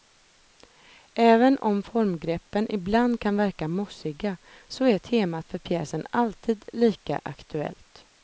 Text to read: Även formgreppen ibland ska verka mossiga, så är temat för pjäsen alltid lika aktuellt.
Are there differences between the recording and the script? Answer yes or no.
yes